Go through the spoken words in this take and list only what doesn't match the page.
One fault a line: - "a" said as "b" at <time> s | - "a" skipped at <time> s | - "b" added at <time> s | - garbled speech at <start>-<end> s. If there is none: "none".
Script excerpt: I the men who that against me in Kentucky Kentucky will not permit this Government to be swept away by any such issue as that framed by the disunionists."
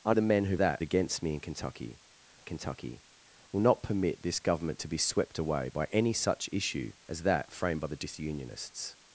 none